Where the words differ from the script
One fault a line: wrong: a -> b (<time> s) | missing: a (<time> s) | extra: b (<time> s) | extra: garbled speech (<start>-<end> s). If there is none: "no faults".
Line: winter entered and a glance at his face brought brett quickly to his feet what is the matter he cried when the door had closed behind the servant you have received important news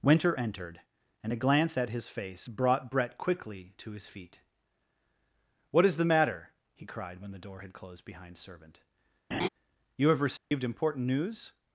missing: the (8.4 s)